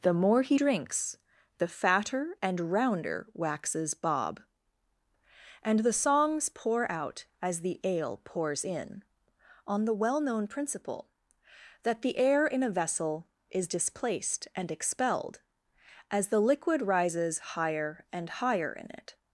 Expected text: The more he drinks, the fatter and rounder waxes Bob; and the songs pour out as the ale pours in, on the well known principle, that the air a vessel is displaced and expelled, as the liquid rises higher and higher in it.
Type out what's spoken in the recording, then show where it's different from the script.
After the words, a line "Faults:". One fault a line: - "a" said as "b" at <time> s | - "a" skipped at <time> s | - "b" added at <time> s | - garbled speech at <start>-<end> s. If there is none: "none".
The more he drinks, the fatter and rounder waxes Bob; and the songs pour out as the ale pours in, on the well known principle, that the air in a vessel is displaced and expelled, as the liquid rises higher and higher in it.
Faults:
- "in" added at 12.4 s